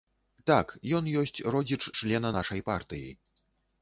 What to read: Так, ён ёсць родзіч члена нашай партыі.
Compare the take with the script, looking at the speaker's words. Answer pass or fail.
pass